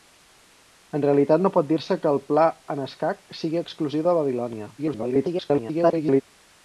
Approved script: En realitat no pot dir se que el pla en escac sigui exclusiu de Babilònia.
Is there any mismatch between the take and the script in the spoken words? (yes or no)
yes